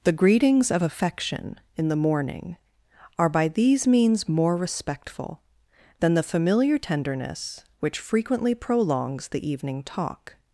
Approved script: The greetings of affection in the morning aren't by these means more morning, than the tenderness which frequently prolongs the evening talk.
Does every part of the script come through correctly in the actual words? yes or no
no